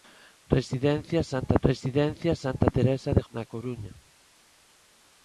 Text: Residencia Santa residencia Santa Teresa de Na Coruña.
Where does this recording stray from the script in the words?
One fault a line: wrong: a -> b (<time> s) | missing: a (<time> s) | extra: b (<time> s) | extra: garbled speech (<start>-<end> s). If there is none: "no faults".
no faults